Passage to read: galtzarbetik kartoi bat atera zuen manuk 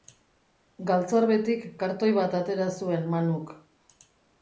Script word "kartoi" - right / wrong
right